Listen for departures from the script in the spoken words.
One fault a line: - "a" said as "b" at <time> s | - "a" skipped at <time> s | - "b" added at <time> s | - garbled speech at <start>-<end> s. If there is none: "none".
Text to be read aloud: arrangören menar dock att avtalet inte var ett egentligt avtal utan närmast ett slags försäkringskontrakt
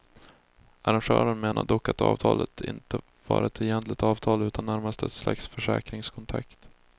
none